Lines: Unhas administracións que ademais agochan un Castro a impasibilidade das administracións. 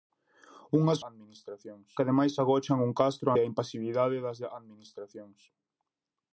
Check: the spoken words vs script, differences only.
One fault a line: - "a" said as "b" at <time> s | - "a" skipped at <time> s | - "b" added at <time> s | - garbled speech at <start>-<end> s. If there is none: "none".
none